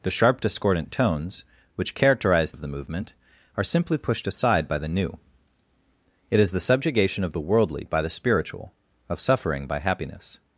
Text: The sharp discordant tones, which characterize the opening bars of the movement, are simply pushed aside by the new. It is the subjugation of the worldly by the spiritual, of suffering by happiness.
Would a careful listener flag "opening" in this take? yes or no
yes